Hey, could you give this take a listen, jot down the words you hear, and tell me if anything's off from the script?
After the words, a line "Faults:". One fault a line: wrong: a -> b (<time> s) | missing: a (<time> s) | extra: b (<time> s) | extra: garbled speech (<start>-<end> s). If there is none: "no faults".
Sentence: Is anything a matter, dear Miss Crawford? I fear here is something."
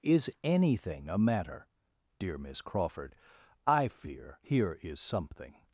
Is anything a matter, dear Miss Crawford? I fear here is something."
Faults:
no faults